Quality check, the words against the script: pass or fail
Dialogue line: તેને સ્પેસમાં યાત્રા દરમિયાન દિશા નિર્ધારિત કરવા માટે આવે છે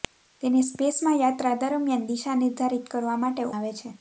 pass